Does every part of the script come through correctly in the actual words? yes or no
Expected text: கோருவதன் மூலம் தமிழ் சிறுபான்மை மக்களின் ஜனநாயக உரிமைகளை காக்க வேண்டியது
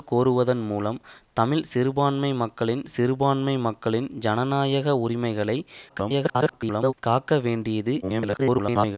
no